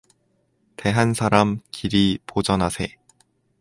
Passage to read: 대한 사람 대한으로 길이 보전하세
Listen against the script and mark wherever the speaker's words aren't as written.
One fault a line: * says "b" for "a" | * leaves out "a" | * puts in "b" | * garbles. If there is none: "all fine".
* leaves out "대한으로"